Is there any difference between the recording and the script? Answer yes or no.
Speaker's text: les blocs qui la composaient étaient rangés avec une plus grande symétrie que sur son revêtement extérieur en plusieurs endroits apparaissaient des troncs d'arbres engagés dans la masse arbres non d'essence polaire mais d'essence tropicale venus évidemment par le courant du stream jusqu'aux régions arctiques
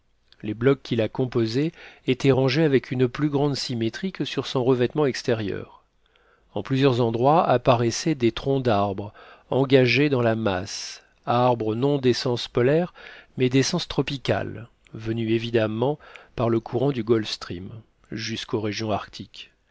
yes